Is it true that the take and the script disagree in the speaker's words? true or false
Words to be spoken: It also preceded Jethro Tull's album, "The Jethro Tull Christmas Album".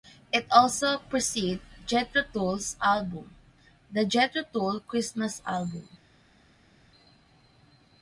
false